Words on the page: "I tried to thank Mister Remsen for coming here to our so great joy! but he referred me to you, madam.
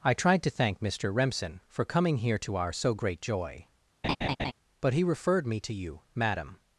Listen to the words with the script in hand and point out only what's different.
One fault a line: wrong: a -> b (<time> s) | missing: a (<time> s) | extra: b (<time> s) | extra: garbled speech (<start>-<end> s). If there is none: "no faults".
no faults